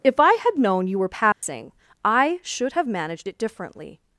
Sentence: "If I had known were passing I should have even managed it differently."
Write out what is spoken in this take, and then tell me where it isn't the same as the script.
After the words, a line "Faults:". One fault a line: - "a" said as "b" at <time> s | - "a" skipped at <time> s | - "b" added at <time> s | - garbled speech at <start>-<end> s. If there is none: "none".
"If I had known you were passing I should have managed it differently."
Faults:
- "you" added at 0.9 s
- "even" skipped at 2.9 s